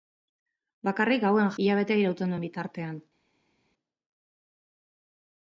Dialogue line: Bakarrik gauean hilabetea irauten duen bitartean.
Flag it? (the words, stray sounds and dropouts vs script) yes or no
no